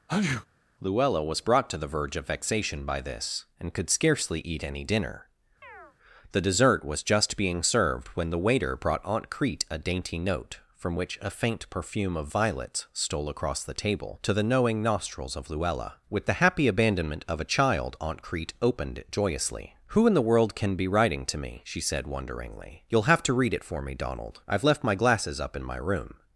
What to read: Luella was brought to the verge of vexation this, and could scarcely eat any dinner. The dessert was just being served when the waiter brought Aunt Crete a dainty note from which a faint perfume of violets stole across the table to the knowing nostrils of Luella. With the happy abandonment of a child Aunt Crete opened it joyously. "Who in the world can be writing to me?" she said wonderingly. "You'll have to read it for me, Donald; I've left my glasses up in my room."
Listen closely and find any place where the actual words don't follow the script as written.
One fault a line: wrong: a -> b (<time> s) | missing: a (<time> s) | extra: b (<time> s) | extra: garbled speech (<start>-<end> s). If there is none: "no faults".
extra: by (2.8 s)